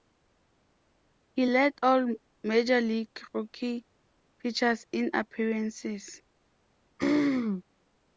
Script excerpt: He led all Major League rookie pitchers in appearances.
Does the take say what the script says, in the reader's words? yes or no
yes